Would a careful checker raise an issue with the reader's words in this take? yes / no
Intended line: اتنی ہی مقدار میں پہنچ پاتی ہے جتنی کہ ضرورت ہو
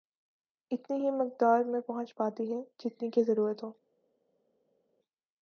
no